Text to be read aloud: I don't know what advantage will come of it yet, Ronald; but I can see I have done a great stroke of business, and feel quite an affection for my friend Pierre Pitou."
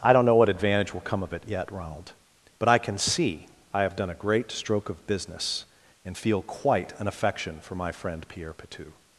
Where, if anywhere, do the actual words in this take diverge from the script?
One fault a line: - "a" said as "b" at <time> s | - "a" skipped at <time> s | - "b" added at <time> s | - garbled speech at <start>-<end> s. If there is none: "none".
none